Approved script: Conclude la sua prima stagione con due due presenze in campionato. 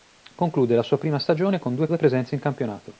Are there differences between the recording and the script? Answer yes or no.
no